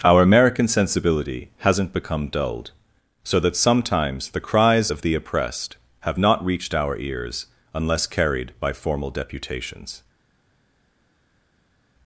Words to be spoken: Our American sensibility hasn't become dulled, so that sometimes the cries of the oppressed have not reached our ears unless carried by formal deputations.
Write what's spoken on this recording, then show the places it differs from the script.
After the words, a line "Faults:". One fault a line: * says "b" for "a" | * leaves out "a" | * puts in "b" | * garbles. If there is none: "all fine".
Our American sensibility hasn't become dulled, so that sometimes the cries of the oppressed have not reached our ears unless carried by formal deputations.
Faults:
all fine